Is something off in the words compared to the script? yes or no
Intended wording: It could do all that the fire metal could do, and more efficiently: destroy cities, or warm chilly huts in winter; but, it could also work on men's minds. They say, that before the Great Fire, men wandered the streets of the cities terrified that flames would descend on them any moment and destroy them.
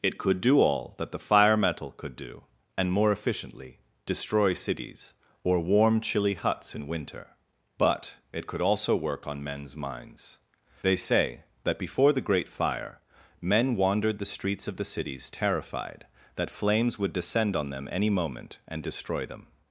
no